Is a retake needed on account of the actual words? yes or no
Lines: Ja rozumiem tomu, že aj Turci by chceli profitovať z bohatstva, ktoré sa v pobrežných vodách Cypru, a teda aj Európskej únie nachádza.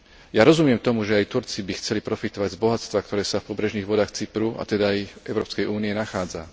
no